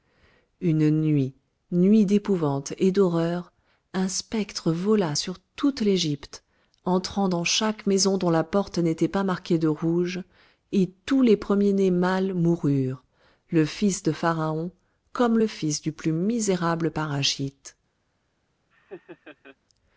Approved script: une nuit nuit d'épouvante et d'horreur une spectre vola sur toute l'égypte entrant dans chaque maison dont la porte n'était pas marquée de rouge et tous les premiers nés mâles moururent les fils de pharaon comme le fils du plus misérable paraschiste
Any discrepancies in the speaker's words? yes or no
yes